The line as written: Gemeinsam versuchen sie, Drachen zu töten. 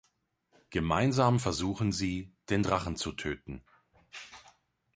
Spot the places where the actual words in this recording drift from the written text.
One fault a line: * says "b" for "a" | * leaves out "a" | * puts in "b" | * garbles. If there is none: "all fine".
* puts in "den"